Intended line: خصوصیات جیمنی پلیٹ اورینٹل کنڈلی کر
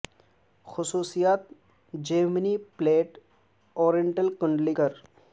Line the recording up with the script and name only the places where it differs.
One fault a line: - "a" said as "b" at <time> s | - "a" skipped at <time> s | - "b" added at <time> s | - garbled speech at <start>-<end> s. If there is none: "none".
none